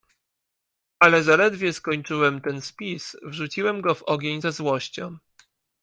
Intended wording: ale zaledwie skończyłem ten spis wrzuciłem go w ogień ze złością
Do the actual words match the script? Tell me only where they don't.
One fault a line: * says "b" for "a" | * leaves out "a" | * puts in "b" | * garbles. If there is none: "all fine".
all fine